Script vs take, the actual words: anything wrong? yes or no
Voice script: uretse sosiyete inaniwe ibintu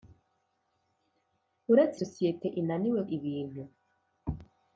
no